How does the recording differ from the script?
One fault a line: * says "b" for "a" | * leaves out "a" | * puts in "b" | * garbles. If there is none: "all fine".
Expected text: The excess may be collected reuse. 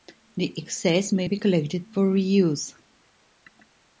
* puts in "for"